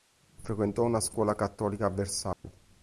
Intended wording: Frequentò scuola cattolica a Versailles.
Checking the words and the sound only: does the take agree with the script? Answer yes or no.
no